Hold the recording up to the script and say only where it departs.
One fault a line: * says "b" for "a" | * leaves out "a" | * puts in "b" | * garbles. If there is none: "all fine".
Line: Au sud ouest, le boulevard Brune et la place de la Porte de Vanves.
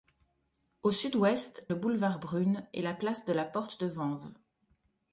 all fine